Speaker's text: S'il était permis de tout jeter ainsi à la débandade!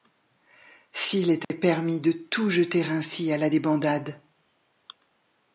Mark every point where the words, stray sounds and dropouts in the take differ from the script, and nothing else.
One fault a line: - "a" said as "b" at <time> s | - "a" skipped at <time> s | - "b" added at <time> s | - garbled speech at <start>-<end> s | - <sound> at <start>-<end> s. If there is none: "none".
- dropout at 1.4-1.5 s